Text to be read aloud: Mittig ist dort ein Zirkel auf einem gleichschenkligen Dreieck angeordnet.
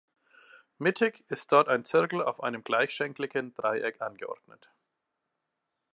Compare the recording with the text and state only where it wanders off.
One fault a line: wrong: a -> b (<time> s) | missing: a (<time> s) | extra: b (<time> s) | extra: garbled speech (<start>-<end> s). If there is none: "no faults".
no faults